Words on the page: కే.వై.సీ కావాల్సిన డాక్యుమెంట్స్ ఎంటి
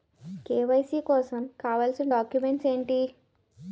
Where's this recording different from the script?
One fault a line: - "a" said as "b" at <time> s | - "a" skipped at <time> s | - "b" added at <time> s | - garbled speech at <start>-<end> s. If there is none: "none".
- "కోసం" added at 1.0 s